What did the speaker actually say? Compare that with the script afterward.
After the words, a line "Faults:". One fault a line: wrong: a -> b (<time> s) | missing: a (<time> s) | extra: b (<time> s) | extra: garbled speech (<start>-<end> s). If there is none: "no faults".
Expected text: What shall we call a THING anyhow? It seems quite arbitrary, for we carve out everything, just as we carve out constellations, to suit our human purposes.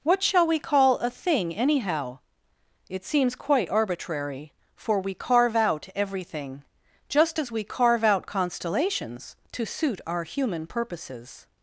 What shall we call a THING anyhow? It seems quite arbitrary, for we carve out everything, just as we carve out constellations, to suit our human purposes.
Faults:
no faults